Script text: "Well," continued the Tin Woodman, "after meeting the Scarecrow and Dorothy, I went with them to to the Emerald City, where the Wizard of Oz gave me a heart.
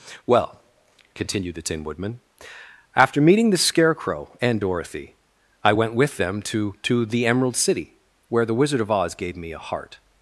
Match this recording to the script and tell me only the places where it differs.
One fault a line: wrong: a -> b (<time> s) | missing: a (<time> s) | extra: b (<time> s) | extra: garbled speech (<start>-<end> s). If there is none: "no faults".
no faults